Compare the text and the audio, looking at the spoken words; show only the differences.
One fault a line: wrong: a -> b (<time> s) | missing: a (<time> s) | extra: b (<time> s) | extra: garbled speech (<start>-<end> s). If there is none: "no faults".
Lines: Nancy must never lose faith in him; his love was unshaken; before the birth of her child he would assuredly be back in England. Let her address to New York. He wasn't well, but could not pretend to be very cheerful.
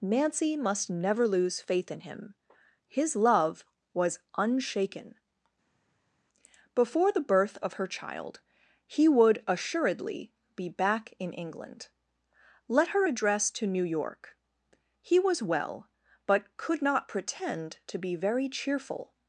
wrong: wasn't -> was (15.2 s)